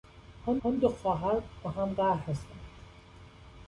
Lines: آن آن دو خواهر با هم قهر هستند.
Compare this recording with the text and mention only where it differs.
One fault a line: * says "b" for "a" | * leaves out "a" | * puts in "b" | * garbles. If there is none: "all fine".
all fine